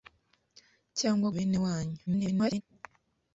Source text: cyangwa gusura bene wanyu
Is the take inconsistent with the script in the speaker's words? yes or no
yes